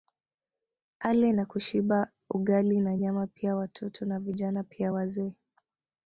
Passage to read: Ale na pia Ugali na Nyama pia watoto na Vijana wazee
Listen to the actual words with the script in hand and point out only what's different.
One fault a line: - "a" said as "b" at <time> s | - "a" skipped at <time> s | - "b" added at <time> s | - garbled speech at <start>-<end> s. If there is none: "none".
- "pia" said as "kushiba" at 1.5 s
- "pia" added at 4.6 s